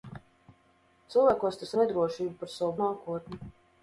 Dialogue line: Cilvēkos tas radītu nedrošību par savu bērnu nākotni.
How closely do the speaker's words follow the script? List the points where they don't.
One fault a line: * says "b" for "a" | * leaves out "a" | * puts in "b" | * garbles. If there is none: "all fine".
* leaves out "radītu"
* leaves out "bērnu"